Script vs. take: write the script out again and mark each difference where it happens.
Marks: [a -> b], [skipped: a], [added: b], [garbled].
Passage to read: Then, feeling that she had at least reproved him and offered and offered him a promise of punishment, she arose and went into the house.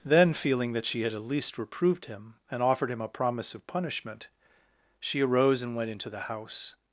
Then, feeling that she had at least reproved him and offered [skipped: and offered] him a promise of punishment, she arose and went into the house.